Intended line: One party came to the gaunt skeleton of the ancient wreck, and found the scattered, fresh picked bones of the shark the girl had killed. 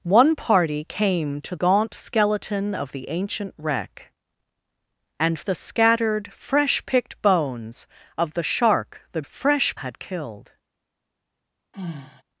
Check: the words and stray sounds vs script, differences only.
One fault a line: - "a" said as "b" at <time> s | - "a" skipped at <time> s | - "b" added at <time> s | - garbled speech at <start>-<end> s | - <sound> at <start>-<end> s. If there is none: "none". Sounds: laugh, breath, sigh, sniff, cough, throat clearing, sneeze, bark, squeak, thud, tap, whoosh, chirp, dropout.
- "the" skipped at 1.6 s
- "found" skipped at 5.4 s
- "girl" said as "fresh" at 9.2 s
- sigh at 11.7-12.2 s